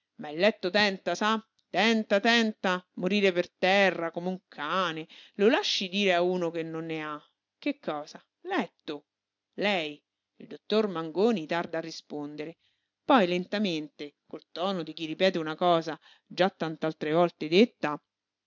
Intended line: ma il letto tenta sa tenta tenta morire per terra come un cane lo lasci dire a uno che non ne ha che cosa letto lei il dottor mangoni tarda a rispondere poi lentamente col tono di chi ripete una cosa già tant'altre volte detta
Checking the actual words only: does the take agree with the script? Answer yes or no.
yes